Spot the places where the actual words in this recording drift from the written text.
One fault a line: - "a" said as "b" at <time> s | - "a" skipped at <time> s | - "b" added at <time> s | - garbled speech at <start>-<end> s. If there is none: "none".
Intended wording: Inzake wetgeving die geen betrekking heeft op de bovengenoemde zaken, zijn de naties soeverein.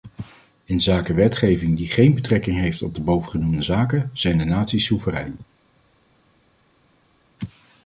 none